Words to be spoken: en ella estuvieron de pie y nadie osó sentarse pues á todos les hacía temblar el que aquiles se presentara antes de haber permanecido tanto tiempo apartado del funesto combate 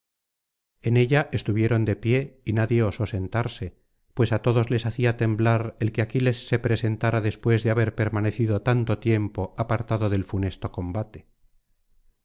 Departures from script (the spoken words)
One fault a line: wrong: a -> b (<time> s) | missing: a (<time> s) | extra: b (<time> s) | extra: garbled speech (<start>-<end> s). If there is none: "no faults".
wrong: antes -> después (7.2 s)